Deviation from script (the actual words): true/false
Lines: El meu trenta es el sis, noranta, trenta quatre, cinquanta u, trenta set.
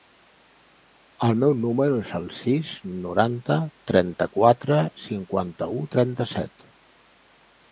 true